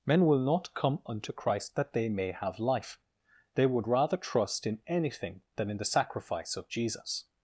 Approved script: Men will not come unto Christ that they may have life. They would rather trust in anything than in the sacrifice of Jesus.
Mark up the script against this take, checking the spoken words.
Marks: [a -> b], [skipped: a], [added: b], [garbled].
Men will not come unto Christ that they may have life. They would rather trust in anything than in the sacrifice of Jesus.